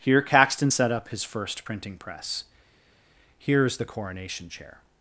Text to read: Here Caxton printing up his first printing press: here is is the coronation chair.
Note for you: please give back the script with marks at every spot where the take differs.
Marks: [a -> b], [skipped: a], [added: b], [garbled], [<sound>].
Here Caxton [printing -> set] up his first printing press: here is [skipped: is] the coronation chair.